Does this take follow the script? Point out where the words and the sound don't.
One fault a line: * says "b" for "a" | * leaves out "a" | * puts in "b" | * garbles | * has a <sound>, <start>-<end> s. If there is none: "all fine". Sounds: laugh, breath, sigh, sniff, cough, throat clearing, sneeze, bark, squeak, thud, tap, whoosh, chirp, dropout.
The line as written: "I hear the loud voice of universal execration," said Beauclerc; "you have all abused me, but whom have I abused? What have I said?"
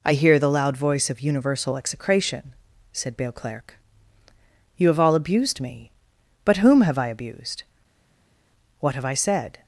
all fine